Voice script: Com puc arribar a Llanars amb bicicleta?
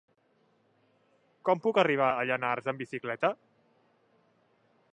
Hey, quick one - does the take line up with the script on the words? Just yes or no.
yes